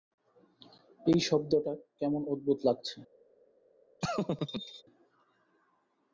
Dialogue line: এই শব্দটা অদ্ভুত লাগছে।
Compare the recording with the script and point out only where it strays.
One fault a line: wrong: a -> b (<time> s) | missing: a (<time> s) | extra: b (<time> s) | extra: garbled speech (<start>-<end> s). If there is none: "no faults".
extra: কেমন (2.0 s)